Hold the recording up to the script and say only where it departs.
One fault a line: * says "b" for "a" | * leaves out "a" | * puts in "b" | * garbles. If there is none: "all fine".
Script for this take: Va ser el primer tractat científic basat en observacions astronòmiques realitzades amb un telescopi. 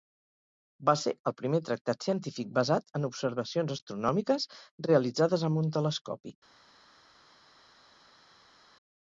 all fine